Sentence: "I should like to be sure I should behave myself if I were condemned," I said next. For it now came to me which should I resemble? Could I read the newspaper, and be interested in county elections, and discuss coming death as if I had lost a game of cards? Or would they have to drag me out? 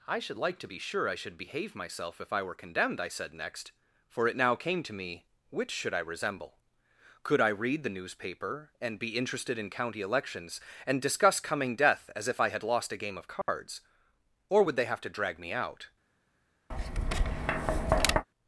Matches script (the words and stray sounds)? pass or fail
fail